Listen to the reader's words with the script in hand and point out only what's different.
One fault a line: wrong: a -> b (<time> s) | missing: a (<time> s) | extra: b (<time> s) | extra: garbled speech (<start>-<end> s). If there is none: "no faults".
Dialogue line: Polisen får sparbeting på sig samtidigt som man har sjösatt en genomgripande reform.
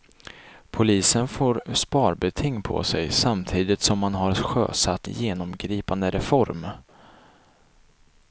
missing: en (5.1 s)